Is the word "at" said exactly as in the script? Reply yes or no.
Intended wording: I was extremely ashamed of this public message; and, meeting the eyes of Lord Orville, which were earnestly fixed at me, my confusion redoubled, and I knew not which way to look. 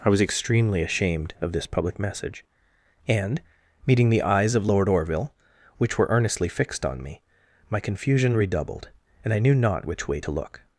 no